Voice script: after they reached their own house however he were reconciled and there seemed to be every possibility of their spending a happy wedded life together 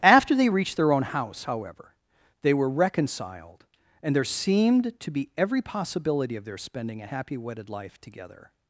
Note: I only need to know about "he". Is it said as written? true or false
false